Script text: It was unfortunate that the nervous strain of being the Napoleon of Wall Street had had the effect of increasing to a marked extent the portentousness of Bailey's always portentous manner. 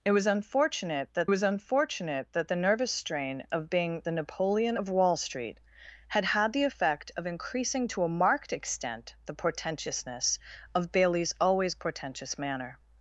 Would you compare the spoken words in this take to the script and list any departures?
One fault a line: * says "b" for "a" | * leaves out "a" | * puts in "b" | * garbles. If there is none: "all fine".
* puts in "was unfortunate that"